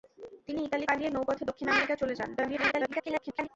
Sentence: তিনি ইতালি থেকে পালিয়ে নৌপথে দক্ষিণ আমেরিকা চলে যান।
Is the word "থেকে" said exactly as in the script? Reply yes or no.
no